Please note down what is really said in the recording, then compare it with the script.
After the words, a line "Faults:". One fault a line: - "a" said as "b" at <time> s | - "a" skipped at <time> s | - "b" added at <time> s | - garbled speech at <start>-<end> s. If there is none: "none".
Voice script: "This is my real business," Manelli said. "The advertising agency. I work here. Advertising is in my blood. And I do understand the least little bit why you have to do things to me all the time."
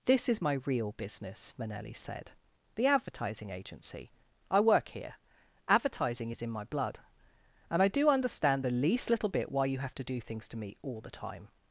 "This is my real business," Manelli said. "The advertising agency. I work here. Advertising is in my blood. And I do understand the least little bit why you have to do things to me all the time."
Faults:
none